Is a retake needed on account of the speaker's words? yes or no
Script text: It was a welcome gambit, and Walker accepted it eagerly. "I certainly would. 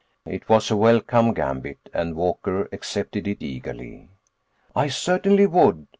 no